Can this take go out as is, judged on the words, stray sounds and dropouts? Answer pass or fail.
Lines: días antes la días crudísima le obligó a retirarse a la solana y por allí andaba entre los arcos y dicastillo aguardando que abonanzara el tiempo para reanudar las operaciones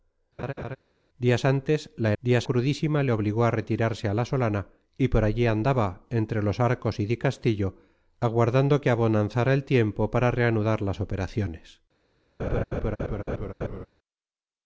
fail